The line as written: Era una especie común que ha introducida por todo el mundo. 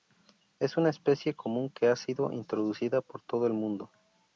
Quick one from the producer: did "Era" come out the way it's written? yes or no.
no